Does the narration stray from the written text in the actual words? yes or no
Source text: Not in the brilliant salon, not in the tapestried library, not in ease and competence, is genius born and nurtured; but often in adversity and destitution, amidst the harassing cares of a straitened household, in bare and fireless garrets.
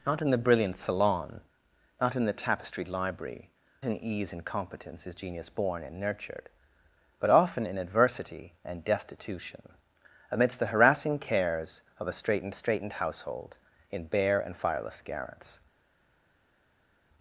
yes